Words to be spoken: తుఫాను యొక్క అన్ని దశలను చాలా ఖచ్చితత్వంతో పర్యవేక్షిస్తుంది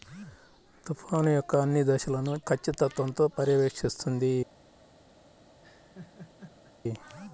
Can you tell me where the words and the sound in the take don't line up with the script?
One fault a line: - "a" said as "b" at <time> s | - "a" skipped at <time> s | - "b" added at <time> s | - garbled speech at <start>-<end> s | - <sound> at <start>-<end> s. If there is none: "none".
- "చాలా" skipped at 2.3 s
- laugh at 5.6-6.7 s